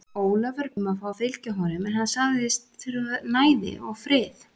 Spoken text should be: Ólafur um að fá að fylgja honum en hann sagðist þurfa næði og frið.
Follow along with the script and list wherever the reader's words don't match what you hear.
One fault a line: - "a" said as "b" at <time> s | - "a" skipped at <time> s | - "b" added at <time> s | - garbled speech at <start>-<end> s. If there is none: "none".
none